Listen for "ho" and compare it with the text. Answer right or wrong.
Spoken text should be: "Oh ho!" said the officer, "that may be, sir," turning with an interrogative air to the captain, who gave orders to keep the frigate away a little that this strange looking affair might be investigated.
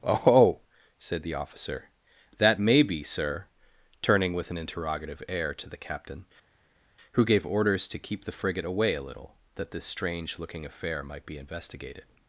wrong